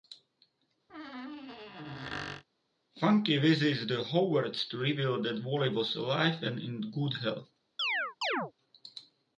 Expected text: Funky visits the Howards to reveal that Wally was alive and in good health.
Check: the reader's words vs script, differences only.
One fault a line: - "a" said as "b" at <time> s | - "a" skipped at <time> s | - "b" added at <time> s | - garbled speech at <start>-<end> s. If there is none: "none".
none